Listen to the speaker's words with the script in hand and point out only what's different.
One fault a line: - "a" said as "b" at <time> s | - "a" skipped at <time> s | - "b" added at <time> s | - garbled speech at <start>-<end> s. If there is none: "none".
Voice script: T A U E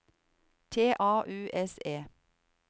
- "S" added at 1.5 s